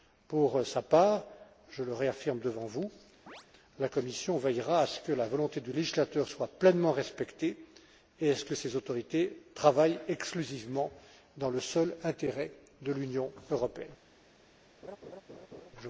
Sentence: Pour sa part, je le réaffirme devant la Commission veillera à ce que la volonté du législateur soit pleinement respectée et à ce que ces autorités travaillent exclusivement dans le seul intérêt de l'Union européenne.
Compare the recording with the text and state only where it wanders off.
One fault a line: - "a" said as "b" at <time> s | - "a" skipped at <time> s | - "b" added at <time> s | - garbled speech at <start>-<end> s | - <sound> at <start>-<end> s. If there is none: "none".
- "vous" added at 2.6 s
- chirp at 3.3-3.5 s
- laugh at 14.8-15.7 s